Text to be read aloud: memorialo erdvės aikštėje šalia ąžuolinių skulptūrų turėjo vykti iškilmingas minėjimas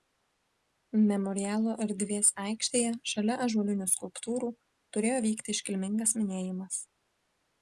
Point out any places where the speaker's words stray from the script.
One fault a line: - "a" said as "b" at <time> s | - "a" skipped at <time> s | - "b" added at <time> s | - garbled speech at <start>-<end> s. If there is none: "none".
none